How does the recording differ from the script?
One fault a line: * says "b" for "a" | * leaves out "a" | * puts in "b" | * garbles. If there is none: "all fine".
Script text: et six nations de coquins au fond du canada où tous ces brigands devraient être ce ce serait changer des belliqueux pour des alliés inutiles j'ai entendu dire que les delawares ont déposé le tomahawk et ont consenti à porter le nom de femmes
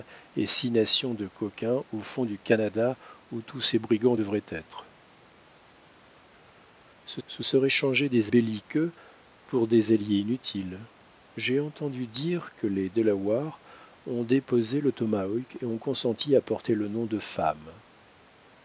all fine